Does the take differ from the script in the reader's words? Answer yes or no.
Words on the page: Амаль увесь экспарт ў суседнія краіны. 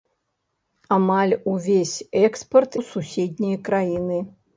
no